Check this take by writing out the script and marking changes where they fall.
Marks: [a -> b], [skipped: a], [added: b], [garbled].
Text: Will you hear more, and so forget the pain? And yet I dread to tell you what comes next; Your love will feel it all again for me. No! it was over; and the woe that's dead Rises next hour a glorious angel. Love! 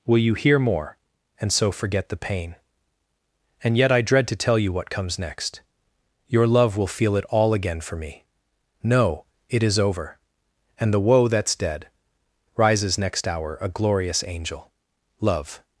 Will you hear more, and so forget the pain? And yet I dread to tell you what comes next; Your love will feel it all again for me. No! it [was -> is] over; and the woe that's dead Rises next hour a glorious angel. Love!